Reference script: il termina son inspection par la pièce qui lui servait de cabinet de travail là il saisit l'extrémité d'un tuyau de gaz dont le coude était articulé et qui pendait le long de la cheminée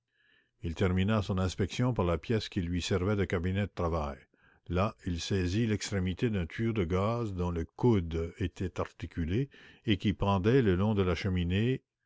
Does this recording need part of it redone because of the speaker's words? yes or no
no